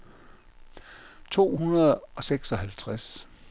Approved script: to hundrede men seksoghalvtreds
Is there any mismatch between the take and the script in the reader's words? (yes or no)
yes